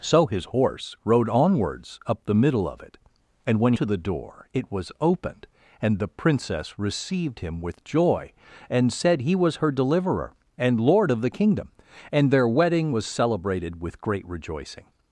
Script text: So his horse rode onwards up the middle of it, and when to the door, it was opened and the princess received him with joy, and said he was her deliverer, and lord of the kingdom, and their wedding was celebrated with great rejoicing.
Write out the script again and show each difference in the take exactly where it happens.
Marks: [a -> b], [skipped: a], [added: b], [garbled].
So his horse rode onwards up the middle of it, and when to the door, it was opened and the princess received him with joy, and said he was her deliverer, and lord of the kingdom, and their wedding was celebrated with great rejoicing.